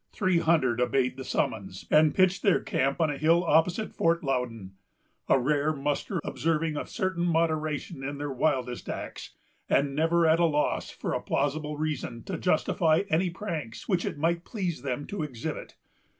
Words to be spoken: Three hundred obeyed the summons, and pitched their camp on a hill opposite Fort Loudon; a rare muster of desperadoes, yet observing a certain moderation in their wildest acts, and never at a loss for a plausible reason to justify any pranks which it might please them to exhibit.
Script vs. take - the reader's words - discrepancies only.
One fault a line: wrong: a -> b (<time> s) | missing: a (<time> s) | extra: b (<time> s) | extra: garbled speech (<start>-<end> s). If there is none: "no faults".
missing: of desperadoes yet (6.2 s)